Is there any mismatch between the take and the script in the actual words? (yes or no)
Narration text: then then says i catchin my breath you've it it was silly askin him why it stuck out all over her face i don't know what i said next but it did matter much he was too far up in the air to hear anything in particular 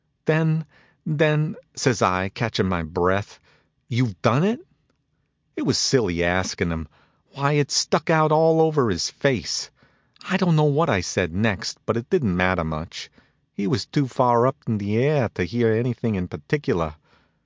yes